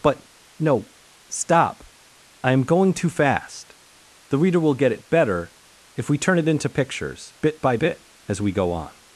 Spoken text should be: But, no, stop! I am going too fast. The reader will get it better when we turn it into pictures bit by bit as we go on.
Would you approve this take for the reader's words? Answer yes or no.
no